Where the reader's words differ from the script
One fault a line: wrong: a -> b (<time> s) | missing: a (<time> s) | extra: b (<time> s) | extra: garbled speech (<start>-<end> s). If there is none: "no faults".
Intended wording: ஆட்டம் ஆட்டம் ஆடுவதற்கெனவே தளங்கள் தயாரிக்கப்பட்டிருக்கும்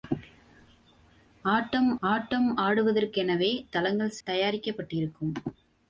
no faults